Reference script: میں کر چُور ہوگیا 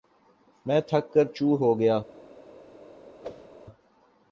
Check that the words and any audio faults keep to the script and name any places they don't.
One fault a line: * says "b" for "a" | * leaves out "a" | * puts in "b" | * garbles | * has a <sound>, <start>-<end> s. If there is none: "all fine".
* puts in "تھک"
* has a whoosh, 3.2-3.5 s